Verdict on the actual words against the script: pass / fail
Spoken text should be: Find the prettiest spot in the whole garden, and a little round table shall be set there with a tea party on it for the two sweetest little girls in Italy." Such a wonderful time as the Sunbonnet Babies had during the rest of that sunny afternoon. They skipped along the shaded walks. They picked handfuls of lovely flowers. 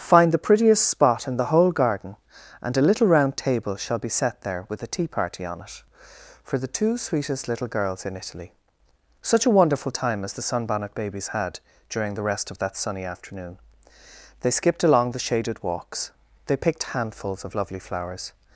pass